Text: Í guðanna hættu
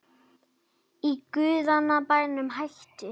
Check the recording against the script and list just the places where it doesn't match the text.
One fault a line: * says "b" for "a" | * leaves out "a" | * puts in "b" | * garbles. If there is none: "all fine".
* puts in "bænum"